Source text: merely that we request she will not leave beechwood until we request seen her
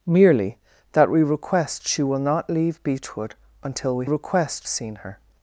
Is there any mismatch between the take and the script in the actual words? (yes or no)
no